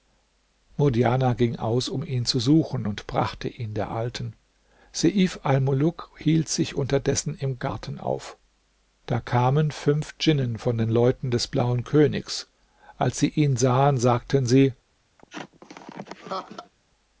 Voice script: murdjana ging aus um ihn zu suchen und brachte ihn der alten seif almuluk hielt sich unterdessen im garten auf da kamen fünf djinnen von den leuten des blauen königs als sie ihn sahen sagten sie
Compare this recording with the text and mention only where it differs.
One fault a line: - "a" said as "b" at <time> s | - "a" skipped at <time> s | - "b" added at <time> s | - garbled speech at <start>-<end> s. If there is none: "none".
none